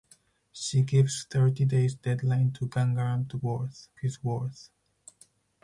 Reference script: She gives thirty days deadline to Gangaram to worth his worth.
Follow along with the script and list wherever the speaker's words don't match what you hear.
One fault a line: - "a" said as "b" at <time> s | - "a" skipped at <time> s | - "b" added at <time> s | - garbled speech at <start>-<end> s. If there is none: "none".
none